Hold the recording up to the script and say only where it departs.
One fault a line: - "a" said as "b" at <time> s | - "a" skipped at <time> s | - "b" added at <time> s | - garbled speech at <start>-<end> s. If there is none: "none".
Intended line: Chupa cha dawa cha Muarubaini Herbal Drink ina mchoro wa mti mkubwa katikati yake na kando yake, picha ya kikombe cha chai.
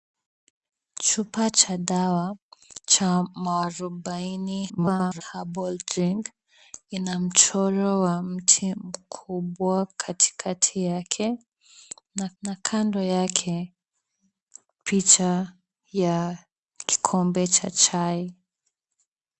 - garbled speech at 4.7-5.2 s
- "na" added at 12.4 s